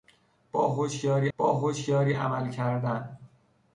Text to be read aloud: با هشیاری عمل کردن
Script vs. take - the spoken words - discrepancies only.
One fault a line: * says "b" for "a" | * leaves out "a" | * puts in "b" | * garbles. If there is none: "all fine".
* puts in "با هشیاری"